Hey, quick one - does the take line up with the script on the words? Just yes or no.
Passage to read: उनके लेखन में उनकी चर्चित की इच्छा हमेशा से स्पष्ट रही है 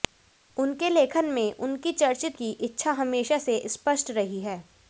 yes